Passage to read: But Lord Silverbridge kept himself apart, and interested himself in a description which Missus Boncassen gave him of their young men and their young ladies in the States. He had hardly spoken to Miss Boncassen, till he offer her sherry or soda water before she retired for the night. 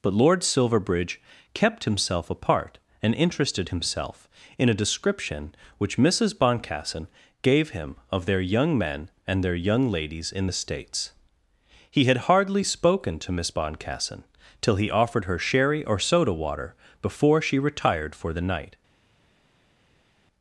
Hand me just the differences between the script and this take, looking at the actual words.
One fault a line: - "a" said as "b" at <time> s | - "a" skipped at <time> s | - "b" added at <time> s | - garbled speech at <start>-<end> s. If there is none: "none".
- "offer" said as "offered" at 14.9 s